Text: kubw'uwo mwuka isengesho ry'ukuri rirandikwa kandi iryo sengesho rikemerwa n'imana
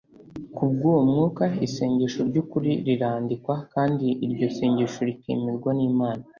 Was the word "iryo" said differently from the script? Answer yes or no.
no